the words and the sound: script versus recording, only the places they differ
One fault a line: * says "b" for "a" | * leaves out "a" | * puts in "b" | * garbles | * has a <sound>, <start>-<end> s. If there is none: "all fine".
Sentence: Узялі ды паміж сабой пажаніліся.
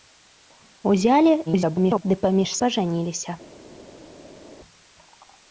* garbles
* leaves out "сабой"